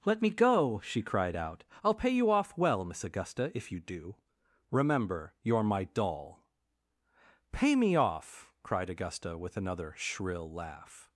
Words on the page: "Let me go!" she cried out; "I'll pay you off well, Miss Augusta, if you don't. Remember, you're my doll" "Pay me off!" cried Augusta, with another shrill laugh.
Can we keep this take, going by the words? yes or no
no